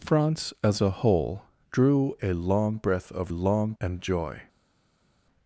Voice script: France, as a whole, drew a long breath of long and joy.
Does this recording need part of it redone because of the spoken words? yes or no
no